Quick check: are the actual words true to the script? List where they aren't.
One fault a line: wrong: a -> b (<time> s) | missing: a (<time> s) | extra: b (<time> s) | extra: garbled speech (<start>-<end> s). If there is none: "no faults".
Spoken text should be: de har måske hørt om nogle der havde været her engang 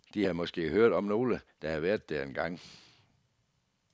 wrong: har -> havde (0.2 s)
wrong: her -> der (2.1 s)